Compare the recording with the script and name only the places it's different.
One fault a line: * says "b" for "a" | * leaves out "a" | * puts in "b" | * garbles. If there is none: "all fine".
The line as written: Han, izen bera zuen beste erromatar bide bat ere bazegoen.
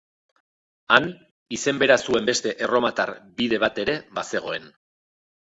all fine